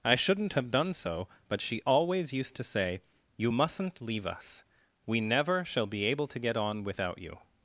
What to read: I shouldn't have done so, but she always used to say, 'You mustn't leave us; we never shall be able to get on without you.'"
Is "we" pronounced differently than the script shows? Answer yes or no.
no